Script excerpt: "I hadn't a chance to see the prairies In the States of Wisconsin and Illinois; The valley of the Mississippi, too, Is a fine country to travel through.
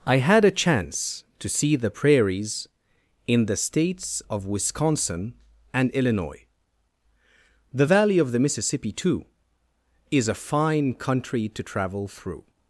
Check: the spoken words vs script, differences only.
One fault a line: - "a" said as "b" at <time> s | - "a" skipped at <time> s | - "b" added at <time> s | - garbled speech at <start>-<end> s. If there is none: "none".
- "hadn't" said as "had" at 0.2 s